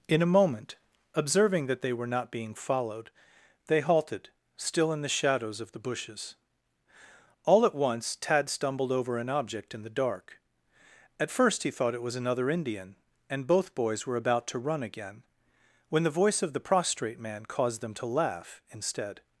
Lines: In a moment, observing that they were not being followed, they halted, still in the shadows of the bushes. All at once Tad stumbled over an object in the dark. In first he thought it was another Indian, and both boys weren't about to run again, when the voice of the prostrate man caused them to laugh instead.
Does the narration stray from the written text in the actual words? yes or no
yes